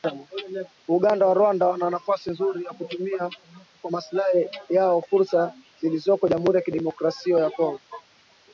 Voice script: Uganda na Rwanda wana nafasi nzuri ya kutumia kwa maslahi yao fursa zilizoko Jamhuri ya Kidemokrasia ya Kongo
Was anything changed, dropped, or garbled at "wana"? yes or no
no